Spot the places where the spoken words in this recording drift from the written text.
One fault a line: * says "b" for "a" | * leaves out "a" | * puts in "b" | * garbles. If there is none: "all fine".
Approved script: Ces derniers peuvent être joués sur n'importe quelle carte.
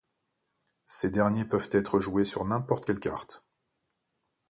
all fine